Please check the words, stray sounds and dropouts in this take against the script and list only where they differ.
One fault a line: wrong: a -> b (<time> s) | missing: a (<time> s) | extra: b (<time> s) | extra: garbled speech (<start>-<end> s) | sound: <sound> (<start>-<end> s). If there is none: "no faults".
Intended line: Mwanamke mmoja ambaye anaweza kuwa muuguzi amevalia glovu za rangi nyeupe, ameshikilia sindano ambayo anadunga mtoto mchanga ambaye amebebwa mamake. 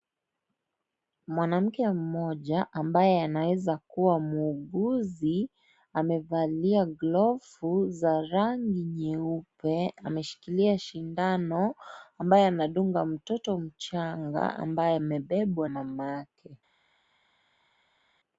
no faults